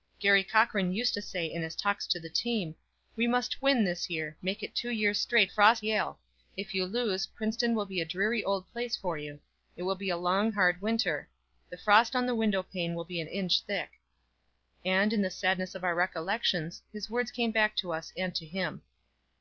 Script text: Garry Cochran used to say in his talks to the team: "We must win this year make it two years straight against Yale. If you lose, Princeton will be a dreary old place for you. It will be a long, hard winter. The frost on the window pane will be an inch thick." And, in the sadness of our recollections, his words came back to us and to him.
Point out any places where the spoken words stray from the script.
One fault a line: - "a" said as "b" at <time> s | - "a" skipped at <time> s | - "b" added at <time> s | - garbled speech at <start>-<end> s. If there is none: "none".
- "against" said as "frost" at 5.5 s